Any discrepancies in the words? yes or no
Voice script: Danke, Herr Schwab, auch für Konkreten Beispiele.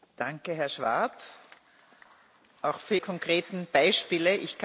no